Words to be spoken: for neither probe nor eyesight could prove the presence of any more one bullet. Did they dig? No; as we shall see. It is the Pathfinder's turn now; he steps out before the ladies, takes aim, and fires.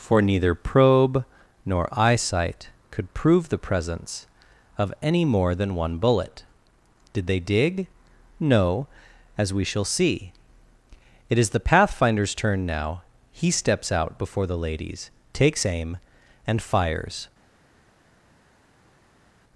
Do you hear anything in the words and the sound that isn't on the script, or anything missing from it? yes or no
yes